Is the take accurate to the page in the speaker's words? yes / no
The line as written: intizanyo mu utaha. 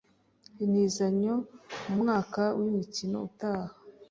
no